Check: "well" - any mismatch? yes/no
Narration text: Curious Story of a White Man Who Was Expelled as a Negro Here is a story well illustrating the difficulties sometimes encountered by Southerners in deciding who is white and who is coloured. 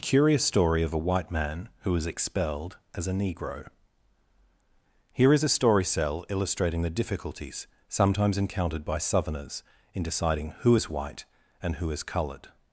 yes